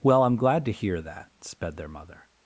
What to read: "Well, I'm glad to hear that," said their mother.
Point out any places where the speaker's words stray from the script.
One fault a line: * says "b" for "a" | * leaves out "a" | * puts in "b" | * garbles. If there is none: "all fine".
* says "sped" for "said"